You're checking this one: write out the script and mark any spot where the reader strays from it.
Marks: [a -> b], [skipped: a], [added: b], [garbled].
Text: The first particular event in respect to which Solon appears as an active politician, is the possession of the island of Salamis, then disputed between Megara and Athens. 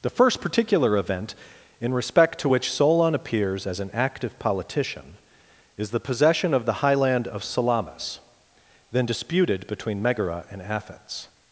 The first particular event in respect to which Solon appears as an active politician, is the possession of the [island -> highland] of Salamis, then disputed between Megara and Athens.